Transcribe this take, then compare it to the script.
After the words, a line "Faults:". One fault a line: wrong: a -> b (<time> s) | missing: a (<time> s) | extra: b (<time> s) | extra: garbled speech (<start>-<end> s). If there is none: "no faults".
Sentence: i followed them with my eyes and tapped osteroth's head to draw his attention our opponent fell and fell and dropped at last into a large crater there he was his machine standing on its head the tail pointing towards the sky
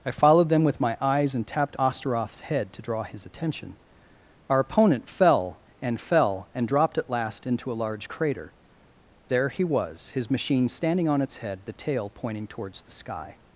i followed them with my eyes and tapped osteroth's head to draw his attention our opponent fell and fell and dropped at last into a large crater there he was his machine standing on its head the tail pointing towards the sky
Faults:
no faults